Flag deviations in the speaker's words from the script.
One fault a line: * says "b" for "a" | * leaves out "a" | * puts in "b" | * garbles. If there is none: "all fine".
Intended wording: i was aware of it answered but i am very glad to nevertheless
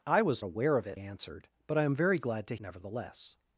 all fine